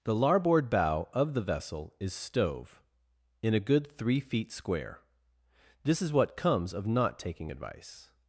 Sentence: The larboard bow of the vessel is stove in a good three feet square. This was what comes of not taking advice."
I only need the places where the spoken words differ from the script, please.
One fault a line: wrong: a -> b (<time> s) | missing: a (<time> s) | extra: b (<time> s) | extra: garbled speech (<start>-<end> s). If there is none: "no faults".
wrong: was -> is (6.0 s)